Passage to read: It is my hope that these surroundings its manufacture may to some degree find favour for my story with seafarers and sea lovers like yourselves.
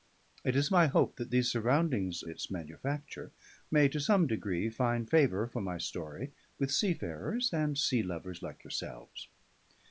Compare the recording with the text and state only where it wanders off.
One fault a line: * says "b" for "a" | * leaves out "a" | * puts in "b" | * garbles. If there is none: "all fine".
all fine